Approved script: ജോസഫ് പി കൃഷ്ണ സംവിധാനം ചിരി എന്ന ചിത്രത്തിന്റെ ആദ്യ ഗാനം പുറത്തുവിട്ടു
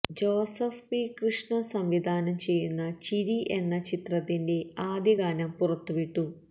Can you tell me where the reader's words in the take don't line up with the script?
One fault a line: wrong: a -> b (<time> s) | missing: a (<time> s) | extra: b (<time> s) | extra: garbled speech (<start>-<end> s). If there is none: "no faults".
extra: ചെയ്യുന്ന (2.4 s)